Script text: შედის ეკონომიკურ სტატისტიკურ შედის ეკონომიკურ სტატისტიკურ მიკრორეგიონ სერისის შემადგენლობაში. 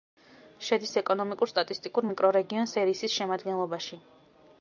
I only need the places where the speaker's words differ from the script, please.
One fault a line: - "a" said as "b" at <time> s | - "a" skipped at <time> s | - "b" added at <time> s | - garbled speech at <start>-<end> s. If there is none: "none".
- "შედის ეკონომიკურ სტატისტიკურ" skipped at 2.1 s